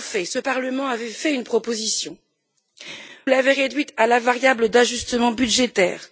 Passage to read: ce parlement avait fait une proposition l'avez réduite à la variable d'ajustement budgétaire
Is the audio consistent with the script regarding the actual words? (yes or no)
yes